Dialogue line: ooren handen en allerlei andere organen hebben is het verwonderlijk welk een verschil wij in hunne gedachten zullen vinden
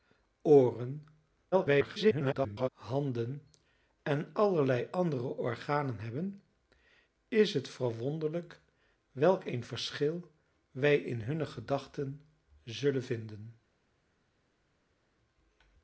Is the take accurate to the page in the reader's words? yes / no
no